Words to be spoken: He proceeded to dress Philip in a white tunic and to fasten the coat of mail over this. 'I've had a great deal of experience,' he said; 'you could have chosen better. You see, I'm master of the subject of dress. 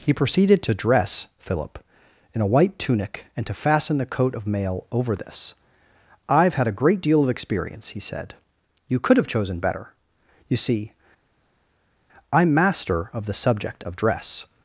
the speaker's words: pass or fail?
pass